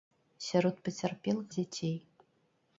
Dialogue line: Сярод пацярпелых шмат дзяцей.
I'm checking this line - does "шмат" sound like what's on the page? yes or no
no